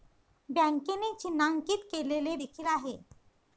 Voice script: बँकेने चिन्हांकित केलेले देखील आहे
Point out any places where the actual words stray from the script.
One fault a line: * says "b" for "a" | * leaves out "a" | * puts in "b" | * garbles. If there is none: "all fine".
all fine